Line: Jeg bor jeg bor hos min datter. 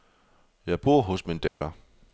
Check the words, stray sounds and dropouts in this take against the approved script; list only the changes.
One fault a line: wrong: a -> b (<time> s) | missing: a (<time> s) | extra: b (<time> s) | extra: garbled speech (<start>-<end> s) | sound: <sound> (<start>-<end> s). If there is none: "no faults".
missing: jeg bor (1.0 s)
sound: dropout (1.5-1.6 s)